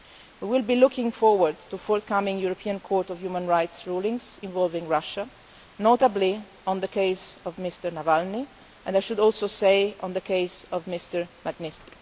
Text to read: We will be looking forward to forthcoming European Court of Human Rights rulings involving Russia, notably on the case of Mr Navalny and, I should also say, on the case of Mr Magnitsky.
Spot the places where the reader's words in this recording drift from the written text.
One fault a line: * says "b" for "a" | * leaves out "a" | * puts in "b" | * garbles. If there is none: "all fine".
all fine